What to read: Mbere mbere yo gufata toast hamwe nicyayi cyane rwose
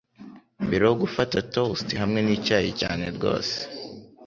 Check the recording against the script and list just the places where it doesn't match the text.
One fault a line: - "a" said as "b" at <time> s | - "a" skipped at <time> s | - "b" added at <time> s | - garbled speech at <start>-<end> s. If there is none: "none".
- "mbere" skipped at 0.8 s